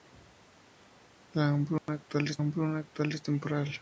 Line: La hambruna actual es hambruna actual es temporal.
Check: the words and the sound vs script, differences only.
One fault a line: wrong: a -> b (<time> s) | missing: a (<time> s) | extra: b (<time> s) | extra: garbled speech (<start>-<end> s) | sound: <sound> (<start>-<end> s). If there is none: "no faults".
sound: dropout (1.8-1.9 s)